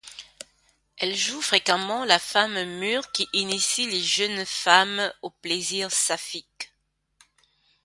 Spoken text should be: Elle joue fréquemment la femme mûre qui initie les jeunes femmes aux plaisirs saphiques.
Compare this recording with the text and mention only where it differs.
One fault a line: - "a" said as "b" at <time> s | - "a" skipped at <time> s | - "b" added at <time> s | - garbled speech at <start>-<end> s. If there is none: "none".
none